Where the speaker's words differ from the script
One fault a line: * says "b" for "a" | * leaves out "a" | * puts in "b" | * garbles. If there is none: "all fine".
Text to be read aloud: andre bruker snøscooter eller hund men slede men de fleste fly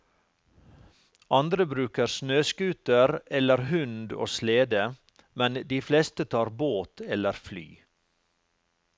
* says "og" for "men"
* puts in "tar båt eller"